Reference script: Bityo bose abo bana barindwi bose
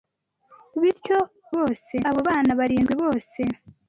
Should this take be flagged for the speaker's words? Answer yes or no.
no